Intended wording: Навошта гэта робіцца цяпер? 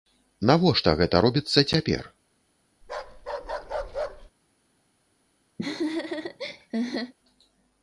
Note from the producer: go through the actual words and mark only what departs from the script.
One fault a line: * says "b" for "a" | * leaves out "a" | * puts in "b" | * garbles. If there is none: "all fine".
all fine